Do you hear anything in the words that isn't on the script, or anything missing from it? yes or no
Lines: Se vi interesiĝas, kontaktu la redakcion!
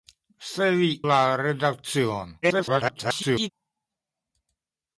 yes